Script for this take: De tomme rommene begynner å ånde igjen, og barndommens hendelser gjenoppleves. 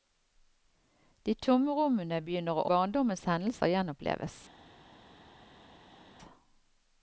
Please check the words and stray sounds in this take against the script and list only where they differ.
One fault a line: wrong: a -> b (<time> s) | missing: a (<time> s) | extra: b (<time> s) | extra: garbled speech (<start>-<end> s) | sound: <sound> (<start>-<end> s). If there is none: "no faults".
missing: ånde igjen og (2.6 s)